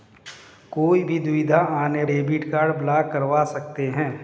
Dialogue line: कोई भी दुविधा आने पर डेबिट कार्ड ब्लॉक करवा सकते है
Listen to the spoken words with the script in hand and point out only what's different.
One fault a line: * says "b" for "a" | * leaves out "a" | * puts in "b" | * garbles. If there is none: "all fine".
* leaves out "पर"